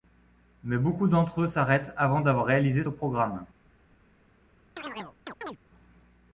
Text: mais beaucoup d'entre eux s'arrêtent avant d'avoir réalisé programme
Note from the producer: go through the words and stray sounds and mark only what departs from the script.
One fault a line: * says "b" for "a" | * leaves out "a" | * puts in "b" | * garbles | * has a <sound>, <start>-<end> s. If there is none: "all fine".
* has a chirp, 4.8-5.6 s